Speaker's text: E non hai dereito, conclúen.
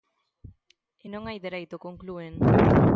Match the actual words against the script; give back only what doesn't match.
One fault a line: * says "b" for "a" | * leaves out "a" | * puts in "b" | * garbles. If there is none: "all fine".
all fine